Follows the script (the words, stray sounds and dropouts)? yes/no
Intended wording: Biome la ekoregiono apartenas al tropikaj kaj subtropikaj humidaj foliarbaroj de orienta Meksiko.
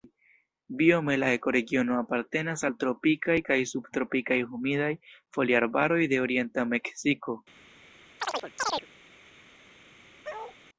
no